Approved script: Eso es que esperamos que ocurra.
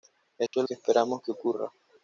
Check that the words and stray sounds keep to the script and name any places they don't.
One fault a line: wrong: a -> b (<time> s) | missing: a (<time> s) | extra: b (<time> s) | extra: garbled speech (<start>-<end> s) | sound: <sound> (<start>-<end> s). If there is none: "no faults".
sound: dropout (0.5-0.5 s)